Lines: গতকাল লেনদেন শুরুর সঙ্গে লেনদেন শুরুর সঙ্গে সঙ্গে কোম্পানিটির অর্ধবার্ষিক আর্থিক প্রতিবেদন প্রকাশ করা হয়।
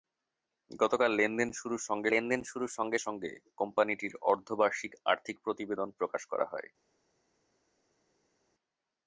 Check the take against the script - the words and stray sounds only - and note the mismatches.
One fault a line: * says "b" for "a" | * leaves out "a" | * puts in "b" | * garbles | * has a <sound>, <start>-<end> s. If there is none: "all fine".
all fine